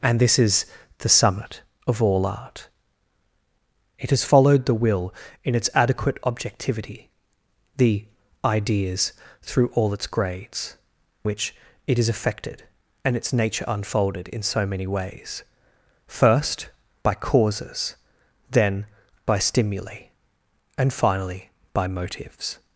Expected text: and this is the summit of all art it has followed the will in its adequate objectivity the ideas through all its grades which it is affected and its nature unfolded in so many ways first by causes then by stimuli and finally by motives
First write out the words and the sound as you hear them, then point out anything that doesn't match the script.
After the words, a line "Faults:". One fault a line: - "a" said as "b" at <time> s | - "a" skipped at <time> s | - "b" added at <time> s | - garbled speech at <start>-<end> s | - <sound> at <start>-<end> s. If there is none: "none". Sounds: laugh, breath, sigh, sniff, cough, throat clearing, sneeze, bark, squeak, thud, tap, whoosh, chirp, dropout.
and this is the summit of all art it has followed the will in its adequate objectivity the ideas through all its grades which it is affected and its nature unfolded in so many ways first by causes then by stimuli and finally by motives
Faults:
none